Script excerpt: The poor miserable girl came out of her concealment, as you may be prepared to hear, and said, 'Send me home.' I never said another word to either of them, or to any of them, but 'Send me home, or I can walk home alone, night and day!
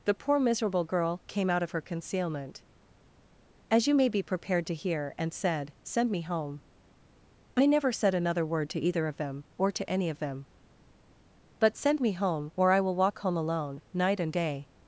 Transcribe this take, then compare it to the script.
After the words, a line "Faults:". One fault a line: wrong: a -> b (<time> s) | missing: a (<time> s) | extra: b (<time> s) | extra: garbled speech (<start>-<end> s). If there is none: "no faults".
The poor miserable girl came out of her concealment, as you may be prepared to hear, and said, 'Send me home.' I never said another word to either of them, or to any of them, but 'Send me home, or I will walk home alone, night and day!
Faults:
wrong: can -> will (12.8 s)